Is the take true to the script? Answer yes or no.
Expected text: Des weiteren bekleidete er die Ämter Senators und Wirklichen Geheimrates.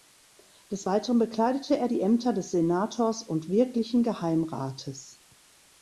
no